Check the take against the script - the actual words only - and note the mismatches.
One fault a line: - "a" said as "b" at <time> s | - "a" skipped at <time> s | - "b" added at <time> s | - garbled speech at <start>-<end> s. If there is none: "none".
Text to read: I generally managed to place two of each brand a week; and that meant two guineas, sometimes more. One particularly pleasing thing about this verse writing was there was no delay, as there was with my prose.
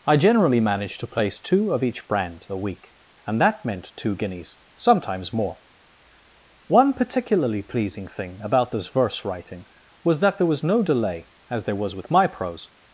- "that" added at 10.2 s